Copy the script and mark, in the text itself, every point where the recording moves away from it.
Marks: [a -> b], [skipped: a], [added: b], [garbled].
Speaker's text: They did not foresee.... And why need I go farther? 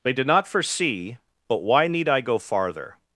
They did not foresee.... [And -> But] why need I go farther?